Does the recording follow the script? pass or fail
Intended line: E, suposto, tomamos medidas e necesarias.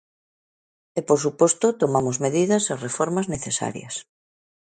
fail